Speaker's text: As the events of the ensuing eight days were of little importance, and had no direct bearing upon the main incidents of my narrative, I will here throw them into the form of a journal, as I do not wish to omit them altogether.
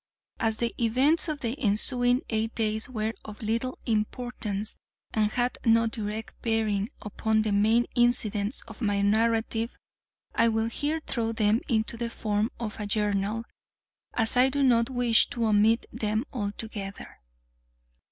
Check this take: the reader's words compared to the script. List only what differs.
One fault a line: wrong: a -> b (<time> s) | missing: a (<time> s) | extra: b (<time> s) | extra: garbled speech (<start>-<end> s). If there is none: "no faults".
no faults